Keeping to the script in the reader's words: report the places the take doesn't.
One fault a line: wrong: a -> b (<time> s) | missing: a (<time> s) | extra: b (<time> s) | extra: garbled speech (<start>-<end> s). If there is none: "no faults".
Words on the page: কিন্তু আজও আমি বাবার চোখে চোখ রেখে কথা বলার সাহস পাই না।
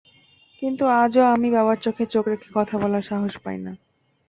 no faults